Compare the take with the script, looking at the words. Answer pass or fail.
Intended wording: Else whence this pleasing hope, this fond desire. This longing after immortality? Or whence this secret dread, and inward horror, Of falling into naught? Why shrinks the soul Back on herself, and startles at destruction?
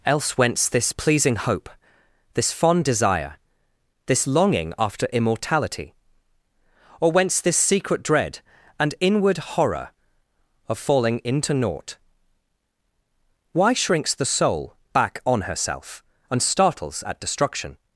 pass